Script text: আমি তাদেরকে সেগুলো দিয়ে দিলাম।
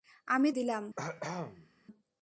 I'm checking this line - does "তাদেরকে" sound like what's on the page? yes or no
no